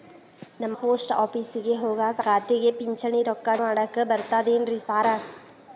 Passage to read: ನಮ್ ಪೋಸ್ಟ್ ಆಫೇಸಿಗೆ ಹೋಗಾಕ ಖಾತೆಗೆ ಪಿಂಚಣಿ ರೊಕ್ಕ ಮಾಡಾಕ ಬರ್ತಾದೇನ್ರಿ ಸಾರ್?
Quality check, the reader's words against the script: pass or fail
pass